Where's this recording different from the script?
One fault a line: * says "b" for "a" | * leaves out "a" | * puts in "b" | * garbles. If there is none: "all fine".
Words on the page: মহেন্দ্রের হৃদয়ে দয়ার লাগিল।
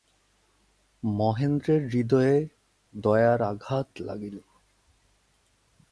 * puts in "আঘাত"